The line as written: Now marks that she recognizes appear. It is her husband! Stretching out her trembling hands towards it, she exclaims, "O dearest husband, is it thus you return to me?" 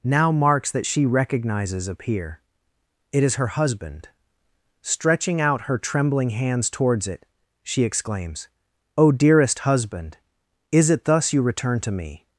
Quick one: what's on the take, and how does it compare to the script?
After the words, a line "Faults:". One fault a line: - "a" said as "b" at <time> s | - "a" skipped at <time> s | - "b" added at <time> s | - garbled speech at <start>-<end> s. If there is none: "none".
Now marks that she recognizes appear. It is her husband! Stretching out her trembling hands towards it, she exclaims, "O dearest husband, is it thus you return to me?"
Faults:
none